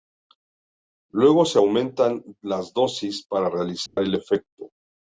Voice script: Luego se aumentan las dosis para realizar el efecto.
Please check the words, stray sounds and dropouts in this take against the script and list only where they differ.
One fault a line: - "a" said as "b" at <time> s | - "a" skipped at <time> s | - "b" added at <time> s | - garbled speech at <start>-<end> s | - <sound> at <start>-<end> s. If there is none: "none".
- dropout at 3.9-4.0 s